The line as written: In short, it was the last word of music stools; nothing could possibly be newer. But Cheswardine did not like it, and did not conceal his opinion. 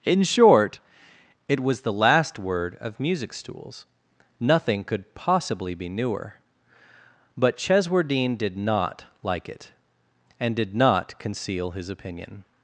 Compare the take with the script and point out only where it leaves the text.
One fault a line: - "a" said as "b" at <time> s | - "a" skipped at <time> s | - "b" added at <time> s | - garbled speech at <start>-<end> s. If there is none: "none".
none